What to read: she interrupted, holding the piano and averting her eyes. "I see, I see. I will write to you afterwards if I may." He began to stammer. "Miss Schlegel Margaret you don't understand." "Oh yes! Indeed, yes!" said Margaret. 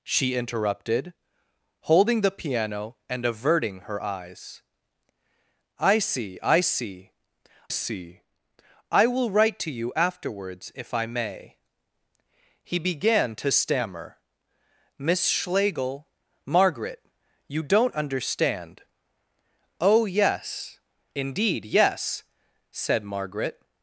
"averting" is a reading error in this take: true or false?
false